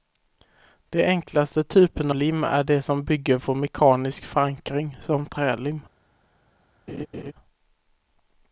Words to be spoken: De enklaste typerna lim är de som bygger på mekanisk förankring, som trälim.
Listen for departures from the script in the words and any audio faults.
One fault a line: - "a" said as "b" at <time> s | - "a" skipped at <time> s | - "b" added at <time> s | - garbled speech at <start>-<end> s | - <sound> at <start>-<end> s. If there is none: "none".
- laugh at 6.9-7.3 s